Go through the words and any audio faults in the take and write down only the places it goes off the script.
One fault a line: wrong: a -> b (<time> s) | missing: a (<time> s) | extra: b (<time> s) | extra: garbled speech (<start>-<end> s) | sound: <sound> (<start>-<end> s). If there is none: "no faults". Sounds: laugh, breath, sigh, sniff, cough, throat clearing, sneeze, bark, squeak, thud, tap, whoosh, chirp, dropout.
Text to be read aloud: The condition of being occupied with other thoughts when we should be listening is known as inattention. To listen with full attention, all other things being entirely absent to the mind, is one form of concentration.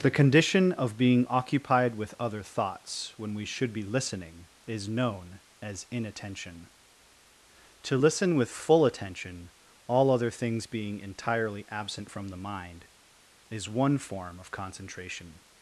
wrong: to -> from (12.1 s)